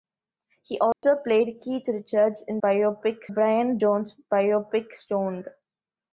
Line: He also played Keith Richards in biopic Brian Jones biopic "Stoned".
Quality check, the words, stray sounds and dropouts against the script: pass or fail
fail